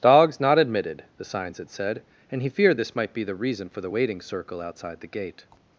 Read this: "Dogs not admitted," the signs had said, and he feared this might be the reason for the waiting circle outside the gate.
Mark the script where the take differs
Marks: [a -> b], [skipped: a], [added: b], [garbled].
"Dogs not admitted," the signs had said, and he feared this might be the reason for the waiting circle outside the gate.